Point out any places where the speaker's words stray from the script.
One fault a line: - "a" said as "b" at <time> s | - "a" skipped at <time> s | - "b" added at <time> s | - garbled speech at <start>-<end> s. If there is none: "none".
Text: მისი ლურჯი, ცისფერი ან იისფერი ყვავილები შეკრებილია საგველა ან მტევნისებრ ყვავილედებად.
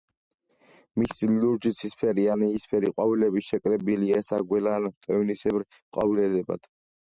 none